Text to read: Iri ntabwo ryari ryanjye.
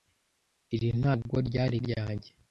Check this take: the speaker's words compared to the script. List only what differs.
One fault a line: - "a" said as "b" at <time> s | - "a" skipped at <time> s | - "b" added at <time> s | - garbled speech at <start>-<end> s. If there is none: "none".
none